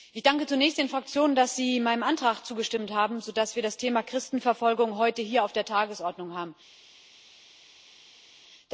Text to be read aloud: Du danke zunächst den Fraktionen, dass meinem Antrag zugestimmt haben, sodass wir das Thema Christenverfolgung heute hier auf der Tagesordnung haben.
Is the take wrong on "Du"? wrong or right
wrong